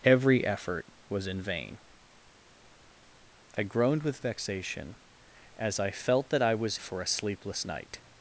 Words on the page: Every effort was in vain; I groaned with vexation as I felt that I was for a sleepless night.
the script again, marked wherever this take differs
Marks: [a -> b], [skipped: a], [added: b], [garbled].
Every effort was in vain; I groaned with vexation as I felt that I was for a sleepless night.